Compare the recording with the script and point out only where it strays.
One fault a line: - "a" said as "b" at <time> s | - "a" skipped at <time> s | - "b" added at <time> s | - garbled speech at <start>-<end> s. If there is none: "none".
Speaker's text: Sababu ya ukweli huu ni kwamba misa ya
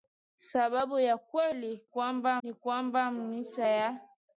- "huu" said as "kwamba" at 1.8 s